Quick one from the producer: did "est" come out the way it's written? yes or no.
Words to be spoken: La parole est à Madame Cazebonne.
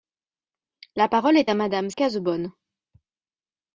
yes